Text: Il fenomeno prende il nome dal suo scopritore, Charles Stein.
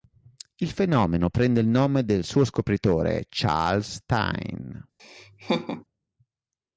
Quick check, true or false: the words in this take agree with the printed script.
true